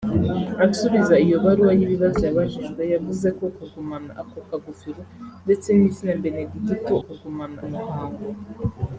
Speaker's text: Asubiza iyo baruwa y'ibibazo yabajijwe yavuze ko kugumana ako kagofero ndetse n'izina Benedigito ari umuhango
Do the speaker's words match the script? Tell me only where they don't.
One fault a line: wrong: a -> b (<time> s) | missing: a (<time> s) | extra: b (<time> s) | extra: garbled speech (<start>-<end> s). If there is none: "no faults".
wrong: ari -> kugumana (7.0 s)